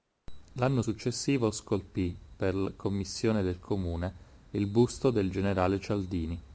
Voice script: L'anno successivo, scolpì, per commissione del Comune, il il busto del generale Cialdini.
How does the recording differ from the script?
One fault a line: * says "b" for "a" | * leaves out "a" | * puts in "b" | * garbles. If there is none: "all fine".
* leaves out "il"